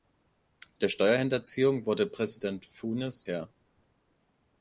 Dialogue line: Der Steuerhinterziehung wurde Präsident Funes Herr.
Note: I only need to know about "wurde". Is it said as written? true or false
true